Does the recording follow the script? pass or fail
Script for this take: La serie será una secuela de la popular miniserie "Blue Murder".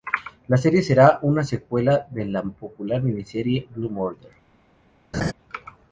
pass